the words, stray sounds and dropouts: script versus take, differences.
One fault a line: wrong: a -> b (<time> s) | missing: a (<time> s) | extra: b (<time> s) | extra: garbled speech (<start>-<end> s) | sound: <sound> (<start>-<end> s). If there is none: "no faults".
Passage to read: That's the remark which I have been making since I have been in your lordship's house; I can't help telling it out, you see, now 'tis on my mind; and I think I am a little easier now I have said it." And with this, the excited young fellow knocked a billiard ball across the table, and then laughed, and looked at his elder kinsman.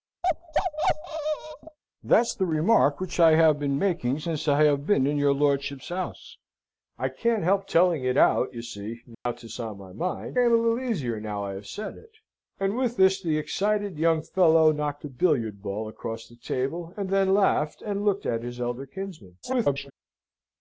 sound: bark (0.2-1.8 s)
sound: dropout (9.1-9.3 s)
missing: and I think (10.4 s)
extra: garbled speech (19.4-19.9 s)